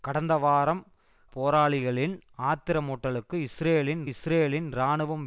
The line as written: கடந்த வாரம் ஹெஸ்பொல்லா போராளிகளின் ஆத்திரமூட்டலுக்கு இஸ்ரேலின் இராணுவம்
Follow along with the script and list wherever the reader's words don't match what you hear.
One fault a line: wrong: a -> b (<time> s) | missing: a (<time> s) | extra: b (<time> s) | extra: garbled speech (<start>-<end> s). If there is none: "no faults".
missing: ஹெஸ்பொல்லா (0.8 s)
extra: இஸ்ரேலின் (4.1 s)